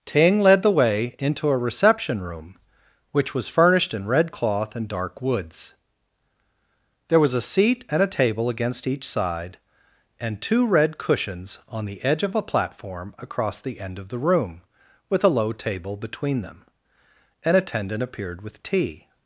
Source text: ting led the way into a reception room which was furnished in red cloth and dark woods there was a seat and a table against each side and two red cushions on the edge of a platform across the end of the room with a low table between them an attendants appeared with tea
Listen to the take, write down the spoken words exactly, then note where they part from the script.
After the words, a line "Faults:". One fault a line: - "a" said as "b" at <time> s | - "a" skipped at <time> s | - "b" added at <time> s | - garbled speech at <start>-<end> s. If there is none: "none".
ting led the way into a reception room which was furnished in red cloth and dark woods there was a seat and a table against each side and two red cushions on the edge of a platform across the end of the room with a low table between them an attendant appeared with tea
Faults:
- "attendants" said as "attendant" at 17.6 s